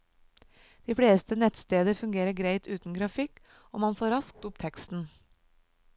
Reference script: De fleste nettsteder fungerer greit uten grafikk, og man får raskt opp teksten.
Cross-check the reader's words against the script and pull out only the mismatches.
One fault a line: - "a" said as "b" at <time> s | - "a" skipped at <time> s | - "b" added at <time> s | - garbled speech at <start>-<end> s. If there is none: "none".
none